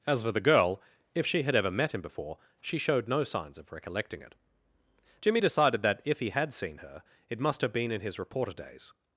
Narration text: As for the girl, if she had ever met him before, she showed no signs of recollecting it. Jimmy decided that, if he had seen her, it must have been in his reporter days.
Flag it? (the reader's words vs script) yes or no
no